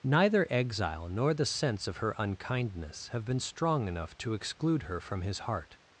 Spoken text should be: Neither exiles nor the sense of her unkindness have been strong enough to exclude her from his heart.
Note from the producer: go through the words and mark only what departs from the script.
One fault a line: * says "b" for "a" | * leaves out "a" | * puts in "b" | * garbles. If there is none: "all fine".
* says "exile" for "exiles"